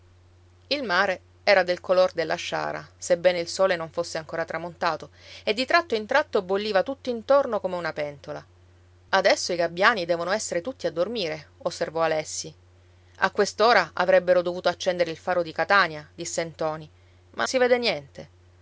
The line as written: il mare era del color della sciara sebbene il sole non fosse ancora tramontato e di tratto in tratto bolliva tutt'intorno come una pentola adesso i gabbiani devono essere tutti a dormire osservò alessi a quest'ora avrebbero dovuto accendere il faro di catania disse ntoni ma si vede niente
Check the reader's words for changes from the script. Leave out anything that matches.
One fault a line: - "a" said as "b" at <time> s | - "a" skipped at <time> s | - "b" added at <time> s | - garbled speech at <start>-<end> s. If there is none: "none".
none